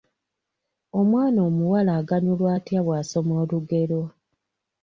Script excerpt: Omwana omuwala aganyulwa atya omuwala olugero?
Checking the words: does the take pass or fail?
fail